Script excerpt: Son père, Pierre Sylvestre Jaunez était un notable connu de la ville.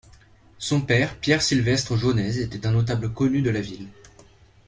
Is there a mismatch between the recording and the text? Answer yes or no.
no